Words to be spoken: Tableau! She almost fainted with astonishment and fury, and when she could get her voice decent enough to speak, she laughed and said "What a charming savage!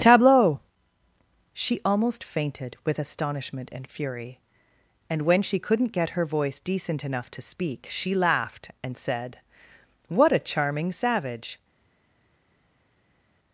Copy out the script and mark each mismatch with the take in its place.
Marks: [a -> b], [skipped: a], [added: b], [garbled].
Tableau! She almost fainted with astonishment and fury, and when she [could -> couldn't] get her voice decent enough to speak, she laughed and said "What a charming savage!